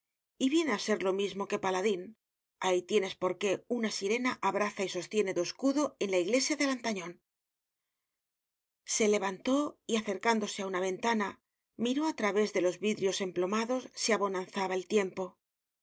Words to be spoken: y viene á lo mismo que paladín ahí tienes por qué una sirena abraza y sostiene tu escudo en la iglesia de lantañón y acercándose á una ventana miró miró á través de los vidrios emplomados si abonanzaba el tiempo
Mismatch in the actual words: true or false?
true